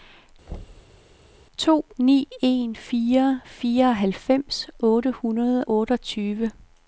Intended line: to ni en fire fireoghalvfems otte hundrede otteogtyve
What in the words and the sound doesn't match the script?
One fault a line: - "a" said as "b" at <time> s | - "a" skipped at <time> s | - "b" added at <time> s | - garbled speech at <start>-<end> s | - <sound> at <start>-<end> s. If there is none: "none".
- thud at 0.5-1.0 s